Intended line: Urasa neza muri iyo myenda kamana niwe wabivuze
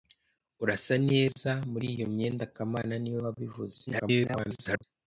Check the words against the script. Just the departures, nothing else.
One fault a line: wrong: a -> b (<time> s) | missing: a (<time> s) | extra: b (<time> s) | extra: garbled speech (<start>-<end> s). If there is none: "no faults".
extra: garbled speech (3.9-4.8 s)